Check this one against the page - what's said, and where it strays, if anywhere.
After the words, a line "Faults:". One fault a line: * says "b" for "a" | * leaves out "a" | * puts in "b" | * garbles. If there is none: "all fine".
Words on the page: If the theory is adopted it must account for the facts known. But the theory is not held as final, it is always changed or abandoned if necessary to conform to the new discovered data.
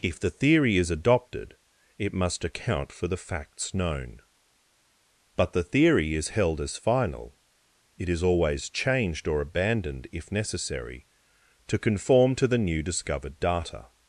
If the theory is adopted it must account for the facts known. But the theory is held as final, it is always changed or abandoned if necessary to conform to the new discovered data.
Faults:
* leaves out "not"